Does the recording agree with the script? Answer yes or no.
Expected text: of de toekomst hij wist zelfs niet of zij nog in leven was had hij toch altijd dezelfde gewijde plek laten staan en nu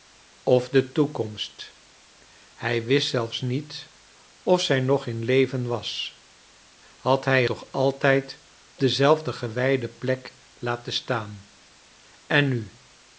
yes